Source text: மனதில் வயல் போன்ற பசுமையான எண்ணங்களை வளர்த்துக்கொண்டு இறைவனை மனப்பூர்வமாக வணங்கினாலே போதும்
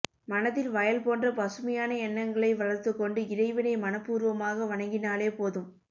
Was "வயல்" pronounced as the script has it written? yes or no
yes